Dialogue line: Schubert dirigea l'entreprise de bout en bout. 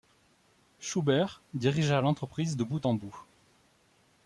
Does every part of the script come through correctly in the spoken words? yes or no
yes